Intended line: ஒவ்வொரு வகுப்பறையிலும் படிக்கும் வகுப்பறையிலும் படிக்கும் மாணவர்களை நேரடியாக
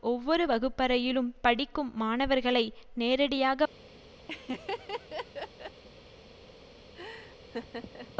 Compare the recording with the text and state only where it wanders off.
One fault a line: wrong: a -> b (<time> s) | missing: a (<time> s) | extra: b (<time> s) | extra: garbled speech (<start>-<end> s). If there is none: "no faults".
missing: வகுப்பறையிலும் படிக்கும் (1.9 s)